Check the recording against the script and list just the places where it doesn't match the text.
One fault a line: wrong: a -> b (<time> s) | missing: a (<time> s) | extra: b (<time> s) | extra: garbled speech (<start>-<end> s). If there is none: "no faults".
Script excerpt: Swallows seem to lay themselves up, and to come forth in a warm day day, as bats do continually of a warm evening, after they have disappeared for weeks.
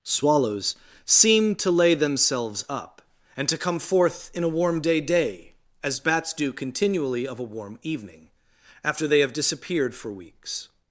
no faults